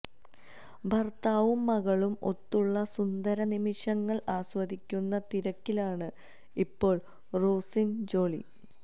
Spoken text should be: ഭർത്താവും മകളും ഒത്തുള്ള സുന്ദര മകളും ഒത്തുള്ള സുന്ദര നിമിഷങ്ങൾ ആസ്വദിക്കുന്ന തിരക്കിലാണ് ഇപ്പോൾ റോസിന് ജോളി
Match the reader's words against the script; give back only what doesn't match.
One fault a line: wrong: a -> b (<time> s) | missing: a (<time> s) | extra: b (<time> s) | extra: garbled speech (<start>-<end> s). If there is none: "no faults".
missing: മകളും ഒത്തുള്ള സുന്ദര (3.4 s)